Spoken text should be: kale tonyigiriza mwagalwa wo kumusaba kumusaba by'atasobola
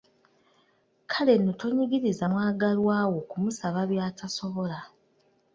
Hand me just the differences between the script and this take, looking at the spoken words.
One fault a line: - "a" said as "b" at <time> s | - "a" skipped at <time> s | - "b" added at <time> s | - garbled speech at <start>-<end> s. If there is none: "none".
- "nno" added at 1.4 s
- "kumusaba" skipped at 3.8 s